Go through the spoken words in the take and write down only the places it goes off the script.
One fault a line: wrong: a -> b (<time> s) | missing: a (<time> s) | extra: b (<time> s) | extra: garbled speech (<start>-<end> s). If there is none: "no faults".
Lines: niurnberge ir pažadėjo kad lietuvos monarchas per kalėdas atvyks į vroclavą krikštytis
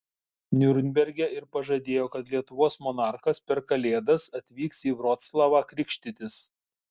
no faults